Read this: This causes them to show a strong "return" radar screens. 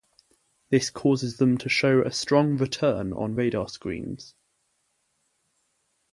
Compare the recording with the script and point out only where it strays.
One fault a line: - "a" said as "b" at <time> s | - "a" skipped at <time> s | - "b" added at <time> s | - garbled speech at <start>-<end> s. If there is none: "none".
- "on" added at 3.1 s